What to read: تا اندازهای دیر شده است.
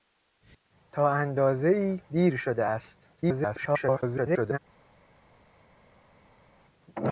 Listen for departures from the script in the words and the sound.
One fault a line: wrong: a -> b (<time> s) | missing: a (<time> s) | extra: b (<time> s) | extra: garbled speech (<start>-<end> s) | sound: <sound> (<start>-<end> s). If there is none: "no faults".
extra: garbled speech (3.2-4.6 s)